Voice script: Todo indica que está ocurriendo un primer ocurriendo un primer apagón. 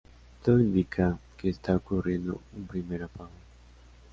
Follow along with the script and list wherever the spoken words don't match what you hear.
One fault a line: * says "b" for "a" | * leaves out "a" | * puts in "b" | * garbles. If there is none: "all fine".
* leaves out "ocurriendo un primer"